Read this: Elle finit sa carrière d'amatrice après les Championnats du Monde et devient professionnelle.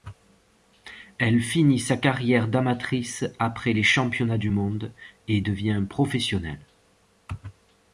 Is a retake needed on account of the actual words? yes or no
no